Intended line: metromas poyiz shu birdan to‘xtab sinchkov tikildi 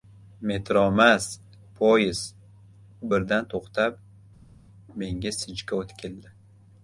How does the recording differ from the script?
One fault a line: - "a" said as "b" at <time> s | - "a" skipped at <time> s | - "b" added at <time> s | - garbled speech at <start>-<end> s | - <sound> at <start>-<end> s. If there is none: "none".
- "shu" said as "u" at 3.0 s
- "menga" added at 5.0 s